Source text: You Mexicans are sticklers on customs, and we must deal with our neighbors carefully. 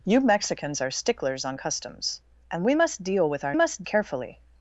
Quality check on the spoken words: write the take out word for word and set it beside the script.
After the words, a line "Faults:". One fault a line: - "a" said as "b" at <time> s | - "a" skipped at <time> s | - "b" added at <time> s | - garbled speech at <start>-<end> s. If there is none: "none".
You Mexicans are sticklers on customs, and we must deal with our must carefully.
Faults:
- "neighbors" said as "must" at 3.5 s